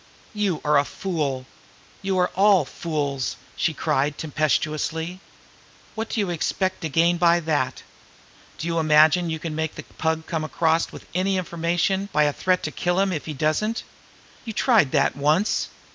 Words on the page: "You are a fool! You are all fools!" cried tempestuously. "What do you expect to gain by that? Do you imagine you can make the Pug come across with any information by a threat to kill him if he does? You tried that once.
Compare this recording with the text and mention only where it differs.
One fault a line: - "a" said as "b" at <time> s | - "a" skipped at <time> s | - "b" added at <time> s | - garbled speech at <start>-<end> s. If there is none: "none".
- "she" added at 3.5 s
- "does" said as "doesn't" at 13.3 s